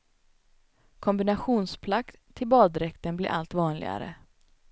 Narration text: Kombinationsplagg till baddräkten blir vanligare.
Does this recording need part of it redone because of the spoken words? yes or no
yes